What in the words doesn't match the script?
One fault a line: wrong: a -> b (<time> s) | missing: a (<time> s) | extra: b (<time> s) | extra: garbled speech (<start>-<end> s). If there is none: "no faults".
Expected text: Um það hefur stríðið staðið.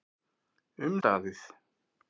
missing: það hefur stríðið (0.9 s)